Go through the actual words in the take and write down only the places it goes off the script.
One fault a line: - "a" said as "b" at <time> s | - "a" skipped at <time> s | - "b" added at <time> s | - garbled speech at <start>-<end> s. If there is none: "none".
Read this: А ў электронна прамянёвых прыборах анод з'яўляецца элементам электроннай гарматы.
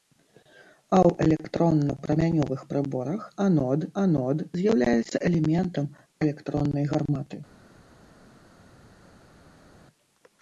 - "анод" added at 4.0 s